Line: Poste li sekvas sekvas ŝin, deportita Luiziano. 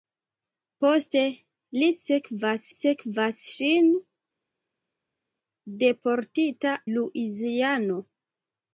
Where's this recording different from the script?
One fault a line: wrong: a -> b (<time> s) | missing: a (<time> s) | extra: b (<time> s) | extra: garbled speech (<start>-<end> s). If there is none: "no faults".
no faults